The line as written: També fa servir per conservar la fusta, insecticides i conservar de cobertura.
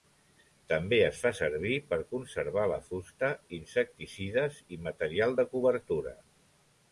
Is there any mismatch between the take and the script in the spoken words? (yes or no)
yes